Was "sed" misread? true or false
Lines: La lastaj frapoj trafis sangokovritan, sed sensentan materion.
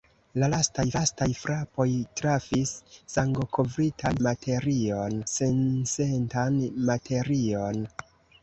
true